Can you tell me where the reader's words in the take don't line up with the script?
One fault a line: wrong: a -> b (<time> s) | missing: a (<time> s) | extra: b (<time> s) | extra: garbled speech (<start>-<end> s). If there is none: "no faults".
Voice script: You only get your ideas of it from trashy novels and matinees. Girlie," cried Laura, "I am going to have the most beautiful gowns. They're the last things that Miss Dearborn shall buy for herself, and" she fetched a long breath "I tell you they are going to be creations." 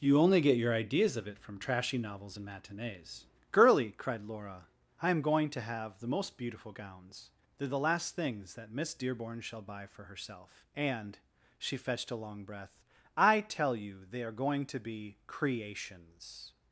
no faults